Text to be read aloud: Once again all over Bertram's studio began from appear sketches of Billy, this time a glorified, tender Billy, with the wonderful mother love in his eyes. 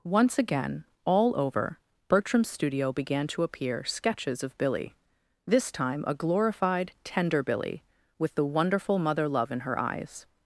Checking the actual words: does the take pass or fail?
fail